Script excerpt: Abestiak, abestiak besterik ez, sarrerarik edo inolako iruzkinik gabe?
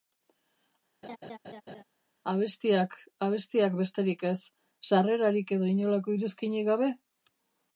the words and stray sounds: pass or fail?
fail